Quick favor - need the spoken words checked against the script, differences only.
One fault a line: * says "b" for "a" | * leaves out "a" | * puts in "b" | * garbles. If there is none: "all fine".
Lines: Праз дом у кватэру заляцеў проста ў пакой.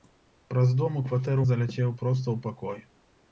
all fine